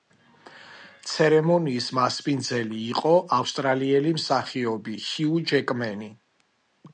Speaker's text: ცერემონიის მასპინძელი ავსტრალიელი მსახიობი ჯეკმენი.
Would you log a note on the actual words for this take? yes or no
yes